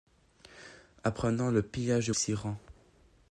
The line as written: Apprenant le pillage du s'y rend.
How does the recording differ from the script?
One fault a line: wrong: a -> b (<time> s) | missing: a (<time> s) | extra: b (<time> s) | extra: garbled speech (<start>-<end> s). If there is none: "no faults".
no faults